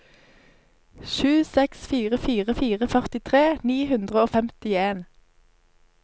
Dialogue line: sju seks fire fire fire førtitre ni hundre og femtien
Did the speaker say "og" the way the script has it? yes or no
yes